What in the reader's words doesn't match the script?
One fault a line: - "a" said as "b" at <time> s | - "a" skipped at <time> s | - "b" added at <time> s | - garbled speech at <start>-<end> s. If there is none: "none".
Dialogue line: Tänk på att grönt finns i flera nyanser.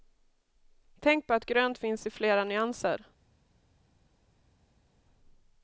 none